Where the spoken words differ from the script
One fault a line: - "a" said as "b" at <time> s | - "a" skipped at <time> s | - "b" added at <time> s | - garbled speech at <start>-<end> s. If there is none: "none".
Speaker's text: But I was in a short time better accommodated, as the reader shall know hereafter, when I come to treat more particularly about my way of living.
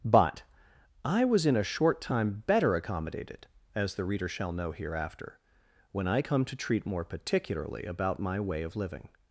none